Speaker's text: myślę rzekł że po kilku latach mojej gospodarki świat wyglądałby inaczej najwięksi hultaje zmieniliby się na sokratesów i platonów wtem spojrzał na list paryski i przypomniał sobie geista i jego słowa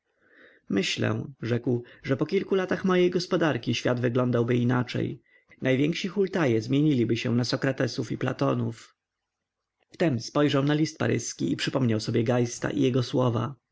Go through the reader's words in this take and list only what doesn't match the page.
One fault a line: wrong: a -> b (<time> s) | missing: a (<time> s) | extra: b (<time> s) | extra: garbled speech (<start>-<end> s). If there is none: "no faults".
no faults